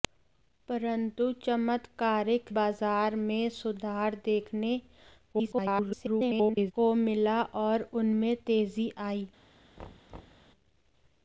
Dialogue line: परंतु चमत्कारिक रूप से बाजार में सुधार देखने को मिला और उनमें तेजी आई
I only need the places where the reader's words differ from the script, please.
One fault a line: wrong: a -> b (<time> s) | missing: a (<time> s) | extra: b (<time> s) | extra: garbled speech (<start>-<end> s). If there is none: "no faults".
missing: रूप से (2.5 s)
extra: garbled speech (5.3-6.7 s)